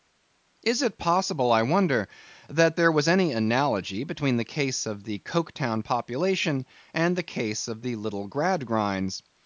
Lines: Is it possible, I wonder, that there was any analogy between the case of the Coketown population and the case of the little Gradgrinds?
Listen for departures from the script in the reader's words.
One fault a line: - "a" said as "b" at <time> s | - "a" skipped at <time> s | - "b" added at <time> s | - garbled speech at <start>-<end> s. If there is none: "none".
none